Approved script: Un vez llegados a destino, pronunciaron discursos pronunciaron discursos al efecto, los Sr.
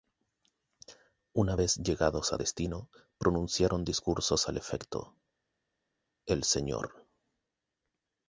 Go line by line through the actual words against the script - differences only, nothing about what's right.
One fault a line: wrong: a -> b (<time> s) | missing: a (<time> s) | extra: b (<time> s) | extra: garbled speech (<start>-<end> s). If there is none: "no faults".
wrong: Un -> Una (1.3 s)
missing: pronunciaron discursos (4.5 s)
wrong: los -> el (6.3 s)